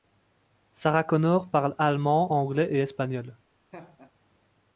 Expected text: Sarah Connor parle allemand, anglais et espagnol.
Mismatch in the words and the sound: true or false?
true